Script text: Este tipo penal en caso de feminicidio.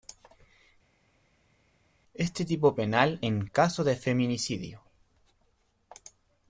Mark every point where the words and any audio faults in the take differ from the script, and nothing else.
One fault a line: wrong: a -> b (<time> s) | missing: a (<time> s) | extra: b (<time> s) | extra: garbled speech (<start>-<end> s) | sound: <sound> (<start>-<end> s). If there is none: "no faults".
no faults